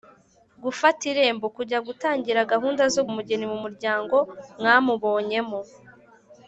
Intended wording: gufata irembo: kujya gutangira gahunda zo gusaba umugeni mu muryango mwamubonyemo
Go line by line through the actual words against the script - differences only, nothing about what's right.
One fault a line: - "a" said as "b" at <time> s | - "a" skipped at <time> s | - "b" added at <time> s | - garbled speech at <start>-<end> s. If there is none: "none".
- "gusaba" skipped at 3.0 s